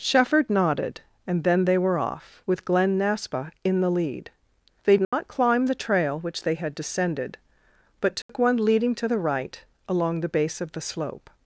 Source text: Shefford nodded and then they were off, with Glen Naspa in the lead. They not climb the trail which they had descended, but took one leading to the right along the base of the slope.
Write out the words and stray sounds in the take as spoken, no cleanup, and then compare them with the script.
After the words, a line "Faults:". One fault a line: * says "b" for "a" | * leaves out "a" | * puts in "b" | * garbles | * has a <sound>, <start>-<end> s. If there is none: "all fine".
Shefford nodded and then they were off, with Glen Naspa in the lead. They not climb the trail which they had descended, but took one leading to the right along the base of the slope.
Faults:
* has a dropout, 5.0-5.1 s
* has a dropout, 8.2-8.3 s